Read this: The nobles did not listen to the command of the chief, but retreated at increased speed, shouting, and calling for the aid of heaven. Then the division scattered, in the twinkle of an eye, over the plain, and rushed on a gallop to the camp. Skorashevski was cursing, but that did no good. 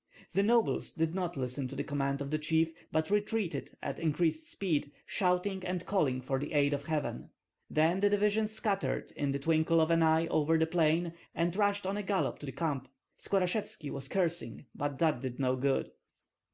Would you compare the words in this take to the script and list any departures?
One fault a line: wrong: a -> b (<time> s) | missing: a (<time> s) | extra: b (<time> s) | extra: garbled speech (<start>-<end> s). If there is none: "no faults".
no faults